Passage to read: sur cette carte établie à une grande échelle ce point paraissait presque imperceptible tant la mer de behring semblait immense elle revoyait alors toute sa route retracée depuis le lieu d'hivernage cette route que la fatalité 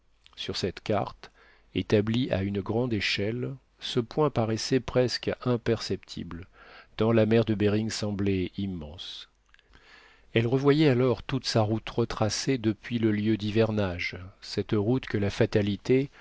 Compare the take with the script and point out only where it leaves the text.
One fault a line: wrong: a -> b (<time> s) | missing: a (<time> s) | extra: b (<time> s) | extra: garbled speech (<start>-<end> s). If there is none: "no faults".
no faults